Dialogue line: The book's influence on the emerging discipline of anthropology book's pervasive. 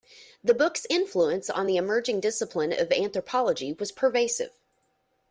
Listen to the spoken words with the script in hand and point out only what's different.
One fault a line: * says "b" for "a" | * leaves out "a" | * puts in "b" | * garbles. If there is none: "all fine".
* says "was" for "book's"